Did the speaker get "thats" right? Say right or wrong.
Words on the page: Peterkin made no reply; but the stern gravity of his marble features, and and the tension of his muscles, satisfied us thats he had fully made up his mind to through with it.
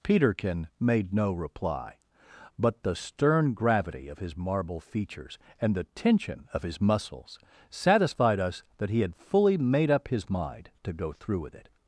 wrong